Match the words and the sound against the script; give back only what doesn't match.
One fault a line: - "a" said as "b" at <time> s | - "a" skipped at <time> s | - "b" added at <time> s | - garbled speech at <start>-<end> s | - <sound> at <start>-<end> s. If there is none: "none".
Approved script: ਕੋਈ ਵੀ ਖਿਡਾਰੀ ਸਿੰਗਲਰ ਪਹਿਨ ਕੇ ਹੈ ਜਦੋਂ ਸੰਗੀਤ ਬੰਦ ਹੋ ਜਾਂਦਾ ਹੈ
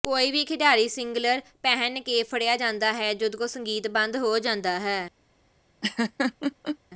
- "ਫੜਿਆ ਜਾਂਦਾ" added at 2.2 s
- laugh at 5.8-6.8 s